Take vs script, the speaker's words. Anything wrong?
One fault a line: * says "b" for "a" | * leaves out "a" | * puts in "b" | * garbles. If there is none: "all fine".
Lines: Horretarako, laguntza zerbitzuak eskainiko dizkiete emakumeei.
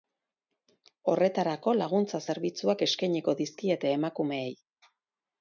all fine